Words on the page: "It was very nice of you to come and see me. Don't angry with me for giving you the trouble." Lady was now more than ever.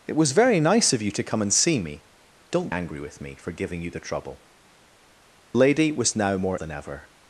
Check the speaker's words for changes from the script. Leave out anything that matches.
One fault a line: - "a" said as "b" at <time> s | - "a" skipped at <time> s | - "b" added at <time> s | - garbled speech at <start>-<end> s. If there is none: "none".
none